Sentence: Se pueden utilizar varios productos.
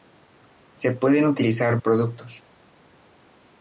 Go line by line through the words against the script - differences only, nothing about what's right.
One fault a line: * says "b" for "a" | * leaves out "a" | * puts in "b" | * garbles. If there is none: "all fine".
* leaves out "varios"